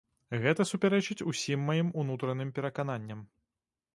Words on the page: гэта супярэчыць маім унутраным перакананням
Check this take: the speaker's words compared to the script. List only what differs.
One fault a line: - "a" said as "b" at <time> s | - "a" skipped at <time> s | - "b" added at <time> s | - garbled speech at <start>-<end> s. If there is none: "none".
- "усім" added at 1.3 s